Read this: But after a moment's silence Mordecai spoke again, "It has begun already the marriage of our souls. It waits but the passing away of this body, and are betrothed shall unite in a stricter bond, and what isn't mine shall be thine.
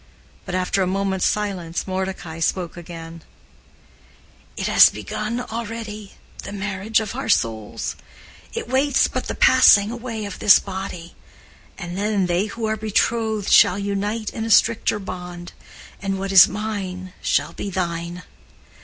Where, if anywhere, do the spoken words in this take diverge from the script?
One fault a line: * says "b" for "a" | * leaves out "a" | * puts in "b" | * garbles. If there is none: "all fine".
* puts in "then they who"
* says "is" for "isn't"